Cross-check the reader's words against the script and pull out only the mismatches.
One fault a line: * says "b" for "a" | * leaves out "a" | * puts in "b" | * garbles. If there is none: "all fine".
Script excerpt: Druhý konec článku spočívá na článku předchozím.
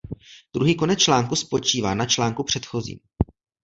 all fine